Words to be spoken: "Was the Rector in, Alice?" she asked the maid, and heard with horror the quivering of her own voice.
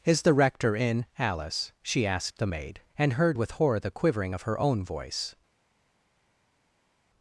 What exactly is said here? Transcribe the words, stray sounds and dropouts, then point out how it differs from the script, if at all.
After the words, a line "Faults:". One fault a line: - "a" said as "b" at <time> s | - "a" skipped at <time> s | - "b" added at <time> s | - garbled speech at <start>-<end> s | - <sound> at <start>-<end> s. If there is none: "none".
"Is the Rector in, Alice?" she asked the maid, and heard with horror the quivering of her own voice.
Faults:
- "Was" said as "Is" at 0.0 s